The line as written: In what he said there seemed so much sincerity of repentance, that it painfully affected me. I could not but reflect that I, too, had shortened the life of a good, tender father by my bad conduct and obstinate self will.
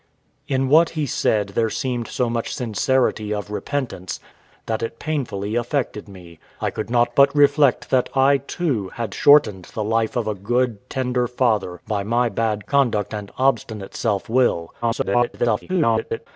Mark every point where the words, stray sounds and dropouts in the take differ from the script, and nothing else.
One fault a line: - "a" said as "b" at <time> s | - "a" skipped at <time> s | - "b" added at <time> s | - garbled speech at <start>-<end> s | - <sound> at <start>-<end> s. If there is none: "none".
- garbled speech at 14.8-16.3 s